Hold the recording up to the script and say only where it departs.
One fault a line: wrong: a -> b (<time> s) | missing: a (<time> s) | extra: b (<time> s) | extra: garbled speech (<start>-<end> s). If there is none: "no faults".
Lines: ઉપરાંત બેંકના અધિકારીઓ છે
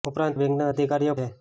no faults